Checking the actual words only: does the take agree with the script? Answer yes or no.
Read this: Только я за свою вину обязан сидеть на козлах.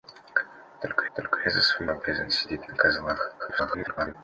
no